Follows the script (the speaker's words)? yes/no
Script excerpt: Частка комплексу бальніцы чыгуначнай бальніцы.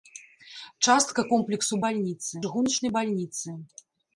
yes